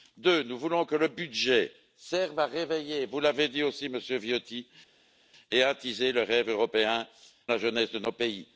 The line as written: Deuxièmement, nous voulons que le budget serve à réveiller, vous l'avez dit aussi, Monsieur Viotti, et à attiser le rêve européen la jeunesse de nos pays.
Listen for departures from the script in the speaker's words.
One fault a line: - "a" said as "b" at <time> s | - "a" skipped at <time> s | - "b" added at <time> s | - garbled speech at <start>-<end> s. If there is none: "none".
none